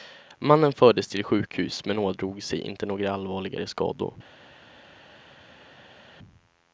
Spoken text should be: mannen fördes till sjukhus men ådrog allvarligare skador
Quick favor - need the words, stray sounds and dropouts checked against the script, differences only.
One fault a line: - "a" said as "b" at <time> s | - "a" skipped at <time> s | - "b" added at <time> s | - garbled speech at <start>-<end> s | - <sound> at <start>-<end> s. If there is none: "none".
- "sig inte några" added at 2.4 s